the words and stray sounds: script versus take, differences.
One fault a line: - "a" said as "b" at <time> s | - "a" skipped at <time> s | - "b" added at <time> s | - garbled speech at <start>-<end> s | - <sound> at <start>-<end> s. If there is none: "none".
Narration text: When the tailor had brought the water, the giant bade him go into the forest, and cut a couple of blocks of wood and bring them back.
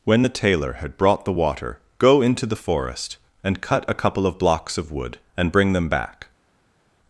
- "the giant bade him" skipped at 1.8 s